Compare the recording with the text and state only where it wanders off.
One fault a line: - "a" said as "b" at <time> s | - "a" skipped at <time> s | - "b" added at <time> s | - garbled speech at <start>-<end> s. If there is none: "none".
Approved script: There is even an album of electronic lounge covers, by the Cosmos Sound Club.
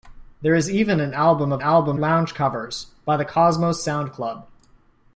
- "electronic" said as "album" at 1.6 s